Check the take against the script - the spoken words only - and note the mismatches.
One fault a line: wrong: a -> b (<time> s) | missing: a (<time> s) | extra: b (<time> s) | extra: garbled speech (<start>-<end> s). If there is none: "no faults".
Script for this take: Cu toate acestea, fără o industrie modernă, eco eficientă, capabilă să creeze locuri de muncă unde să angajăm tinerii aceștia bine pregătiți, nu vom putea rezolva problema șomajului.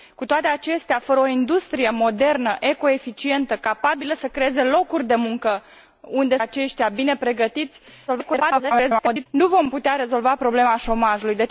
missing: să angajăm tinerii (6.4 s)
extra: garbled speech (8.1-9.3 s)